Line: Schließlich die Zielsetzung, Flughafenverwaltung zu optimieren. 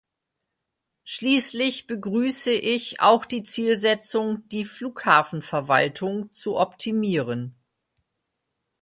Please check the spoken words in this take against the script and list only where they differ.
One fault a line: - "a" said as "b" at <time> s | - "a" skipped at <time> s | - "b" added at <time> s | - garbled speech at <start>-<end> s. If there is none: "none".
- "begrüße ich auch" added at 1.9 s
- "die" added at 4.5 s